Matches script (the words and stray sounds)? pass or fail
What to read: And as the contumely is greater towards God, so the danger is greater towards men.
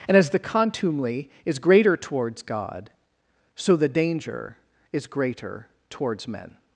pass